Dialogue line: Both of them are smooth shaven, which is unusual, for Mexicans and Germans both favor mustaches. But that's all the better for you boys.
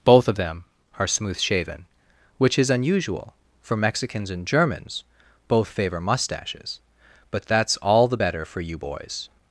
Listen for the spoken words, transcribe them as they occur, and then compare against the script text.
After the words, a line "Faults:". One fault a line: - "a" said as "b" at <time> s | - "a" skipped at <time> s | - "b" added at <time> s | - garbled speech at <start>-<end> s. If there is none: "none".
Both of them are smooth shaven, which is unusual, for Mexicans and Germans both favor mustaches. But that's all the better for you boys.
Faults:
none